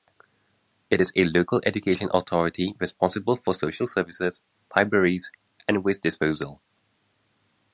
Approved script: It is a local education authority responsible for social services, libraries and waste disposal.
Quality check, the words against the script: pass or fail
pass